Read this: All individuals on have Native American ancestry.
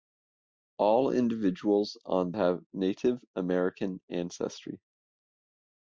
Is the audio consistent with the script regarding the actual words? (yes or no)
yes